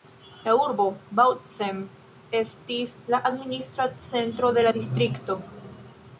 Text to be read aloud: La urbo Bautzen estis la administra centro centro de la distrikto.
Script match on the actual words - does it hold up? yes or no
no